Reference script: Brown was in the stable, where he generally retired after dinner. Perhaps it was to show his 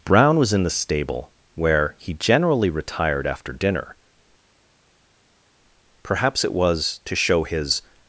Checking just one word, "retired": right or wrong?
right